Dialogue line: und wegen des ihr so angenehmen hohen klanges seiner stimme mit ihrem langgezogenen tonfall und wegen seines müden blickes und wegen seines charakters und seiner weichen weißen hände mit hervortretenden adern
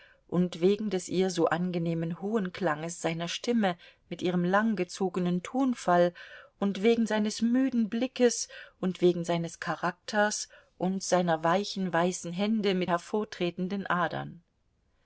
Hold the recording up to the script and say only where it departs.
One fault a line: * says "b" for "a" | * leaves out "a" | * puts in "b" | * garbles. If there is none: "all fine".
all fine